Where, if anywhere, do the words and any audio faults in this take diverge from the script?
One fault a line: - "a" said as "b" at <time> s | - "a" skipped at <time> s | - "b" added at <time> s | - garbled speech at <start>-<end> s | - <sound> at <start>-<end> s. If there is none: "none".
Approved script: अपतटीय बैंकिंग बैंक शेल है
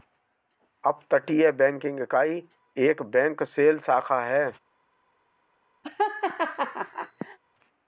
- "इकाई एक" added at 2.0 s
- "शाखा" added at 3.8 s
- laugh at 5.8-7.4 s